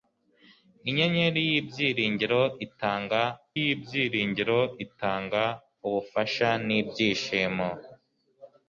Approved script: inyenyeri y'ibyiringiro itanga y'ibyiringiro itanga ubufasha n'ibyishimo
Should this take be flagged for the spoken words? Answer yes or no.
no